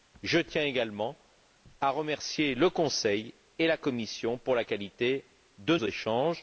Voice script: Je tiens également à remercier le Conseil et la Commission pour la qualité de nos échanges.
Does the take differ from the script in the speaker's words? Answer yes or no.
yes